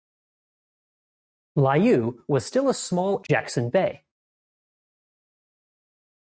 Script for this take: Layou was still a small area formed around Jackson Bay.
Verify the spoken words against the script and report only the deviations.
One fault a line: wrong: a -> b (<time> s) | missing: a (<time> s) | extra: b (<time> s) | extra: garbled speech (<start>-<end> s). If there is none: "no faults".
missing: area formed around (3.2 s)